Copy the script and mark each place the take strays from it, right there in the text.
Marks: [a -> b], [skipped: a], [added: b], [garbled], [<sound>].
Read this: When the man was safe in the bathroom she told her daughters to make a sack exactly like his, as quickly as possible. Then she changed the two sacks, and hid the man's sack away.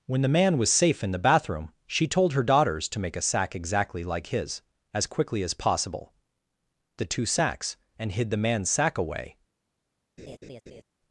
When the man was safe in the bathroom she told her daughters to make a sack exactly like his, as quickly as possible. [skipped: Then she changed] the two sacks, and hid the man's sack away. [laugh]